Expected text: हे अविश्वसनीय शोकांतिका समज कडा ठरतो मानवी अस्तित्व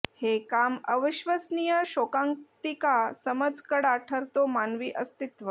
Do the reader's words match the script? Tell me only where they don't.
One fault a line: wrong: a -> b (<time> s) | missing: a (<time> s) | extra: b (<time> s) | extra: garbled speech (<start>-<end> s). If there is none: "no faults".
extra: काम (0.5 s)